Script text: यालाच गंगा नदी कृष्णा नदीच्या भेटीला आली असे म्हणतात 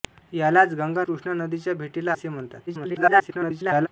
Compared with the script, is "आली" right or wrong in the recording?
wrong